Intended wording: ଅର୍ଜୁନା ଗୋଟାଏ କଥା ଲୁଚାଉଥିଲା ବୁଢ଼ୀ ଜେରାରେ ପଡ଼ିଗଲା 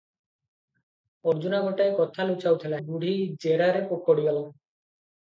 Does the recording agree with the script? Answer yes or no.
yes